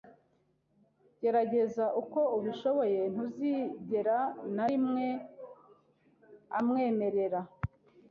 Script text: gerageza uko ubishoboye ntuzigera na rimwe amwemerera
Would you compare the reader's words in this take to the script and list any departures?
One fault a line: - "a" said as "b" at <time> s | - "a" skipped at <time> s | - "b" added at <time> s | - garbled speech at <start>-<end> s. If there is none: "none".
none